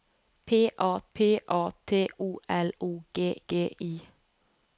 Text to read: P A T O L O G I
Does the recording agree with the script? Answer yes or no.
no